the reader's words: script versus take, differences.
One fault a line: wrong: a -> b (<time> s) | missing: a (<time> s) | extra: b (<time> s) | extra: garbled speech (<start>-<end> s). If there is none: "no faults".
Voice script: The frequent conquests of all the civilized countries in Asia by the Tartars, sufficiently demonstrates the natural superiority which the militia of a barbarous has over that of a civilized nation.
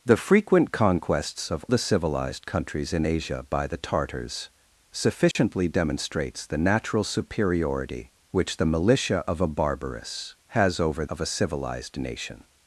missing: all (1.6 s)
missing: that (11.0 s)